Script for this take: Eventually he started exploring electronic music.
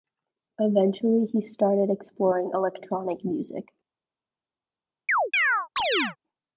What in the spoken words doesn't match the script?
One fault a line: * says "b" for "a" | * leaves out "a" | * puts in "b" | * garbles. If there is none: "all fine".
all fine